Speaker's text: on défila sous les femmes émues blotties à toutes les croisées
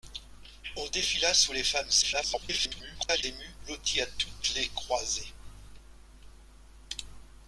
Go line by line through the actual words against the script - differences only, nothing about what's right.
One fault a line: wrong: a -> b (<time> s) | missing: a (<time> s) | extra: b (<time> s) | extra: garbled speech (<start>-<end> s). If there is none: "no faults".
extra: garbled speech (2.0-3.2 s)